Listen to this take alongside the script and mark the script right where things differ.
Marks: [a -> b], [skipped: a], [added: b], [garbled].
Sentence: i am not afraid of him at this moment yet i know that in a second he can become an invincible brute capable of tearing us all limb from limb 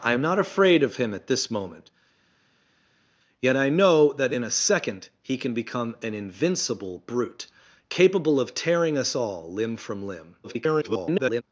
i am not afraid of him at this moment yet i know that in a second he can become an invincible brute capable of tearing us all limb from limb [garbled]